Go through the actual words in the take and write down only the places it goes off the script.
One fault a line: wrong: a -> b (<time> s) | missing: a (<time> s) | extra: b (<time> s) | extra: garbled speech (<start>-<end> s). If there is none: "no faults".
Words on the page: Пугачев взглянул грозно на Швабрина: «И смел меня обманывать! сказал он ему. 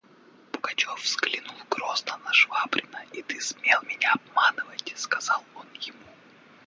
extra: ты (3.2 s)